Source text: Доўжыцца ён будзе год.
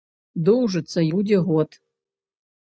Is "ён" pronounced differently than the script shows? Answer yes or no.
yes